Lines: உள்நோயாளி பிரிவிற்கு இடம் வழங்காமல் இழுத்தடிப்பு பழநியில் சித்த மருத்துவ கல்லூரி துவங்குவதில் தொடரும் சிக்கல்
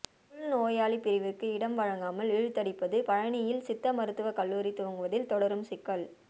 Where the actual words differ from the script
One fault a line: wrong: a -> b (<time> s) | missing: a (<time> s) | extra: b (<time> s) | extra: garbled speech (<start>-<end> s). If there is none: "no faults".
no faults